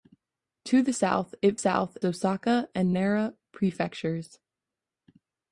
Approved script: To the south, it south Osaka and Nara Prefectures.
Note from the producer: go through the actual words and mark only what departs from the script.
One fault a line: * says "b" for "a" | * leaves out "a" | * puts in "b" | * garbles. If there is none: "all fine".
all fine